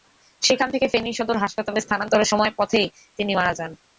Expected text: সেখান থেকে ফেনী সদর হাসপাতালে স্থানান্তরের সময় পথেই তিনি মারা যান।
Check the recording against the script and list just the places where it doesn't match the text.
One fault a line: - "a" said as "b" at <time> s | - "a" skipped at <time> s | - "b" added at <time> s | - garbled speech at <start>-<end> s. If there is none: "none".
none